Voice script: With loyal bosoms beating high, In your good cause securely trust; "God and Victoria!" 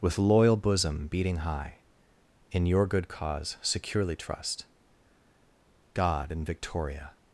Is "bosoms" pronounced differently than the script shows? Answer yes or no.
yes